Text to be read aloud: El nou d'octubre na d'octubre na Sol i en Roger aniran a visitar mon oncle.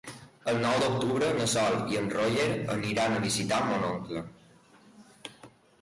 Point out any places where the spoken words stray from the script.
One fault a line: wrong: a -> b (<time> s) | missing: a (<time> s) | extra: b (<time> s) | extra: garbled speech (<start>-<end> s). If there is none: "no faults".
missing: d'octubre na (1.5 s)